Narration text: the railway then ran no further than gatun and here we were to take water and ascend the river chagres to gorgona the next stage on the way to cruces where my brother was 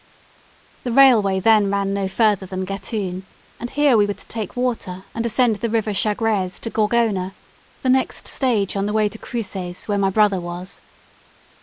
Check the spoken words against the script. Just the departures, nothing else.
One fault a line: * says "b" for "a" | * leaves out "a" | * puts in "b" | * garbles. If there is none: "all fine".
all fine